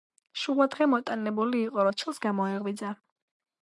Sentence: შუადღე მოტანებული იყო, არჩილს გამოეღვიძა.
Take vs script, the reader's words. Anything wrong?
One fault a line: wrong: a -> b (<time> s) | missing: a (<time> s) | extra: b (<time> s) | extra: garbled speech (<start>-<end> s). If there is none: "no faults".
no faults